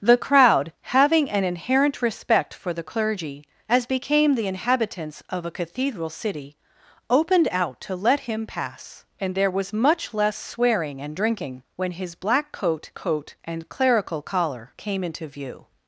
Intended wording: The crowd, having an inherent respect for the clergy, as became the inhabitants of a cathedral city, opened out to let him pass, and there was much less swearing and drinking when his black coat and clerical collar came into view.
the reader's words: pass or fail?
fail